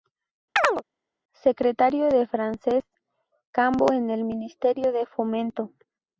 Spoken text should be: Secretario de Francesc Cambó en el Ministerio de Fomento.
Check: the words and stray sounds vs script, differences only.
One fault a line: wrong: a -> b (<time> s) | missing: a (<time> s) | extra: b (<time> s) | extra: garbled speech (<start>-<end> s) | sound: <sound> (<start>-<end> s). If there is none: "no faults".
sound: chirp (0.6-0.8 s)